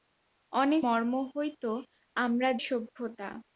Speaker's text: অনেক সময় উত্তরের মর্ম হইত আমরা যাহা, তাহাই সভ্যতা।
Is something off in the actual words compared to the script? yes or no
yes